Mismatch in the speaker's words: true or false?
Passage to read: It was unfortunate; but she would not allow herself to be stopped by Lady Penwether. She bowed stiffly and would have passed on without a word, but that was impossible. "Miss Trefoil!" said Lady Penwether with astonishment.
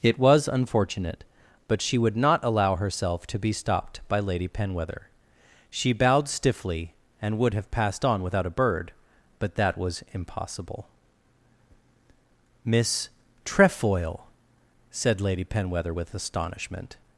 true